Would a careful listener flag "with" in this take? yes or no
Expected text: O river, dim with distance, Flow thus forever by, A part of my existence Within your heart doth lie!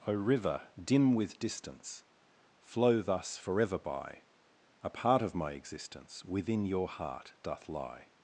no